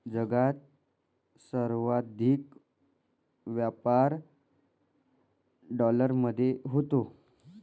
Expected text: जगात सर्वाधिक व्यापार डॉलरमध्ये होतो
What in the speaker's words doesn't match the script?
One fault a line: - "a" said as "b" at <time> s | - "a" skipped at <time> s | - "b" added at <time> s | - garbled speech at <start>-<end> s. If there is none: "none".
none